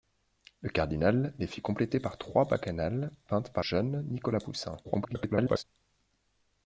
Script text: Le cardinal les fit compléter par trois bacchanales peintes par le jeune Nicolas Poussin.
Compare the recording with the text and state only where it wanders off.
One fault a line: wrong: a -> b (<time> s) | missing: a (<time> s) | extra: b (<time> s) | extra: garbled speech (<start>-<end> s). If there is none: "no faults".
missing: le (3.6 s)
extra: garbled speech (4.8-5.6 s)